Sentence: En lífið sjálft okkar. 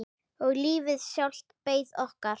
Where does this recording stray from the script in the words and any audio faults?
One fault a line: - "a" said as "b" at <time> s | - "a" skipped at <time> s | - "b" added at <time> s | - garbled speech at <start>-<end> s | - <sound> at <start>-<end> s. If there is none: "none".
- "En" said as "Og" at 0.5 s
- "beið" added at 1.7 s